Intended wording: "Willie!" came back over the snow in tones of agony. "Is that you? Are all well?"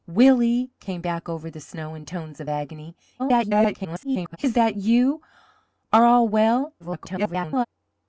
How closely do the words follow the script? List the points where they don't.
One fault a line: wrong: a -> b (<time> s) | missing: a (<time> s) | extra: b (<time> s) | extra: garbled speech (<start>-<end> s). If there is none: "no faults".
extra: garbled speech (3.2-4.4 s)
extra: garbled speech (6.8-7.7 s)